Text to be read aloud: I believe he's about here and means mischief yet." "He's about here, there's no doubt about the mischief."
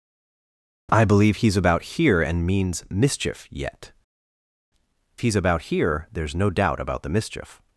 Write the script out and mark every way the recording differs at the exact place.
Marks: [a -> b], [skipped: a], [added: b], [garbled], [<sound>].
I believe he's about here and means mischief yet." "He's about here, there's no doubt about the mischief."